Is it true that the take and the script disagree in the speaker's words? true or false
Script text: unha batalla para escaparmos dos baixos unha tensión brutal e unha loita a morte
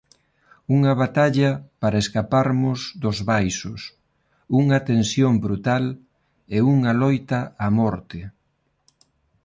false